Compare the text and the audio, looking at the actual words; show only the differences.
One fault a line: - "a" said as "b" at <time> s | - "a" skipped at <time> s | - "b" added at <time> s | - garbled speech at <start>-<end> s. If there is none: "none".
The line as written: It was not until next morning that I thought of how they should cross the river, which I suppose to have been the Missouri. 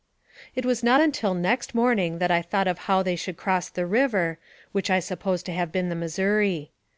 none